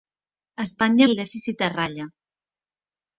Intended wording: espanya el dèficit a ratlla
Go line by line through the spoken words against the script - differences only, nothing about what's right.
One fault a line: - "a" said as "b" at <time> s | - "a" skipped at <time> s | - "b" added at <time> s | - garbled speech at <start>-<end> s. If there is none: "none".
none